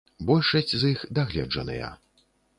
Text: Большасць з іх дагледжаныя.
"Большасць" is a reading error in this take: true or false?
false